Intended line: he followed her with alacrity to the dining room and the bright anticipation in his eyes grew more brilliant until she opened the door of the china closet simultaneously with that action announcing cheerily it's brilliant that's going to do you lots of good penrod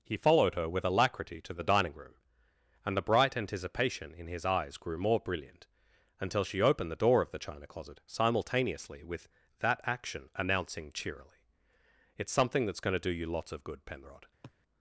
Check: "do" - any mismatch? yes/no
no